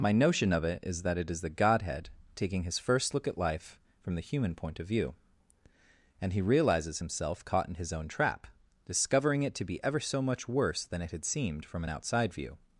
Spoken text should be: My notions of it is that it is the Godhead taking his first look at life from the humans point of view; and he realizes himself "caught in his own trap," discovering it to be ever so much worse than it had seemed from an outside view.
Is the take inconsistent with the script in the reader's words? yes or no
yes